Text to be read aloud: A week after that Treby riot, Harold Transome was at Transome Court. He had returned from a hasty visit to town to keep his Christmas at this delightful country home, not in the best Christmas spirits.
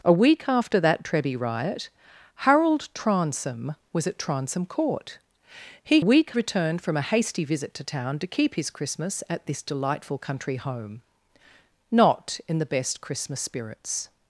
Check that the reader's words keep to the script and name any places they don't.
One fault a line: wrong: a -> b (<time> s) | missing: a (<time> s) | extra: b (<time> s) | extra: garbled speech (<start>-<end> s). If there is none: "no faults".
wrong: had -> week (6.0 s)